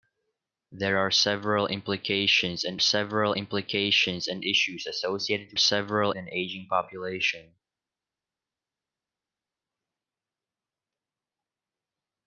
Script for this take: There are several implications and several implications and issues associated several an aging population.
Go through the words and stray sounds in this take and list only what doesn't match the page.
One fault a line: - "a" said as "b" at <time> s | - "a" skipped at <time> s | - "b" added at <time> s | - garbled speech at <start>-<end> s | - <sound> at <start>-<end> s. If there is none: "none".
none